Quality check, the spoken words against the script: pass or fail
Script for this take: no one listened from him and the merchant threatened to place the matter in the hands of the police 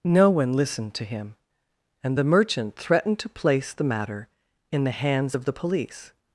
fail